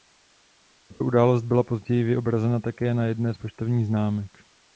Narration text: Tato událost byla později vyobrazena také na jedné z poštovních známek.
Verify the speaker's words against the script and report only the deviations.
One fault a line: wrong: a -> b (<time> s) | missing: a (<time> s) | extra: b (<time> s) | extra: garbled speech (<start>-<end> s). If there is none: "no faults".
no faults